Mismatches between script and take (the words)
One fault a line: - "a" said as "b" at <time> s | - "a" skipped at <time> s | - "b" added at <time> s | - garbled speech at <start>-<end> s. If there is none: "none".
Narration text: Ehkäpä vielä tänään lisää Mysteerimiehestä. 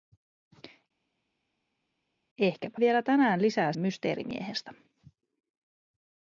none